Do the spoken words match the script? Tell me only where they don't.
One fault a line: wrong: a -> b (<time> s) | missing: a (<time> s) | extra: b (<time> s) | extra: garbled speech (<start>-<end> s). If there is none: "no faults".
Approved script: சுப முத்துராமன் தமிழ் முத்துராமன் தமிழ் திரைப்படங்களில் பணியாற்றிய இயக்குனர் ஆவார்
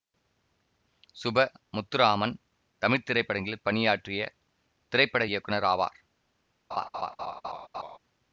missing: முத்துராமன் தமிழ் (3.0 s)
extra: திரைப்பட (4.9 s)